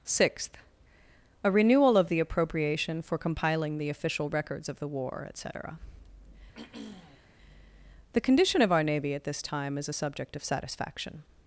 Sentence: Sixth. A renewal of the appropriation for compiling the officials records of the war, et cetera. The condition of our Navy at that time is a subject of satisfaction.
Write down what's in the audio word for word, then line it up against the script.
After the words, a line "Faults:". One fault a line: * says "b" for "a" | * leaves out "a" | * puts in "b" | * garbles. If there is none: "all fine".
Sixth. A renewal of the appropriation for compiling the official records of the war, et cetera. The condition of our Navy at this time is a subject of satisfaction.
Faults:
* says "official" for "officials"
* says "this" for "that"